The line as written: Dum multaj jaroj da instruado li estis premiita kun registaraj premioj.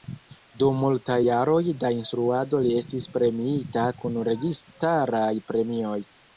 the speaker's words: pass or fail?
pass